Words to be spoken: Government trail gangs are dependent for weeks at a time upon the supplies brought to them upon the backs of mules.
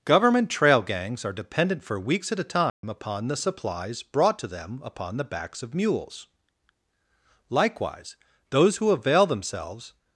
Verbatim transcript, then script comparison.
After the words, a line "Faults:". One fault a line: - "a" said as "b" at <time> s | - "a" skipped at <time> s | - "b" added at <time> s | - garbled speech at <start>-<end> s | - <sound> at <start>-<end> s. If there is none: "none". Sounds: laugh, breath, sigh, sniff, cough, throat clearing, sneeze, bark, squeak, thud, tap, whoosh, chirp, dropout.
Government trail gangs are dependent for weeks at a time upon the supplies brought to them upon the backs of mules. Likewise, those who avail themselves
Faults:
- dropout at 2.7-2.8 s
- "Likewise those who avail themselves" added at 7.5 s